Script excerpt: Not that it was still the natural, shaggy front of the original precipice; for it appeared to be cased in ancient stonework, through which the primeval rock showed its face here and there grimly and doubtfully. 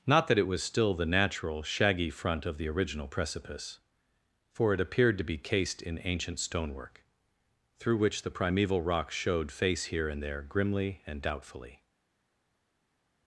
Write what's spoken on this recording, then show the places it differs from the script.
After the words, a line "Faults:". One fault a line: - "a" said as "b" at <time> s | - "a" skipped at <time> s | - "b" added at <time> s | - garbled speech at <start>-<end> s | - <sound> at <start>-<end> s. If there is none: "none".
Not that it was still the natural, shaggy front of the original precipice; for it appeared to be cased in ancient stonework, through which the primeval rock showed face here and there grimly and doubtfully.
Faults:
- "its" skipped at 9.5 s